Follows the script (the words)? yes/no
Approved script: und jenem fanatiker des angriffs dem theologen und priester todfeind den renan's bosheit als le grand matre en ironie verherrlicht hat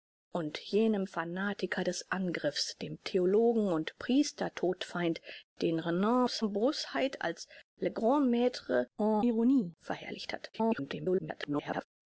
no